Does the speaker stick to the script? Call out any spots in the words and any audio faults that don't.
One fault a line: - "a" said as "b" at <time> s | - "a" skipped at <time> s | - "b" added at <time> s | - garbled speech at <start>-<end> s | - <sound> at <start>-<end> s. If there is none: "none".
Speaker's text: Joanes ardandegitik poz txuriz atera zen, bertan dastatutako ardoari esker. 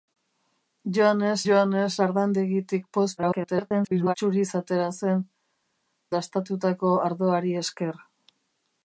- "joanes" added at 1.5 s
- garbled speech at 3.2-4.1 s
- "bertan" skipped at 5.3 s